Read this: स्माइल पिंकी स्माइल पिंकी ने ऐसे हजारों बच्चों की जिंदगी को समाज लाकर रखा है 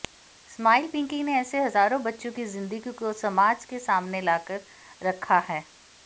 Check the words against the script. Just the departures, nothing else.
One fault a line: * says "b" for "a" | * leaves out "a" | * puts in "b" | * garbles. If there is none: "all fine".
* leaves out "स्माइल पिंकी"
* puts in "के सामने"